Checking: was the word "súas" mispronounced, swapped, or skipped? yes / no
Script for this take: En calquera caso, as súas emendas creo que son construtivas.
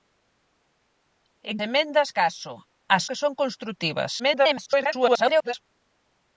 yes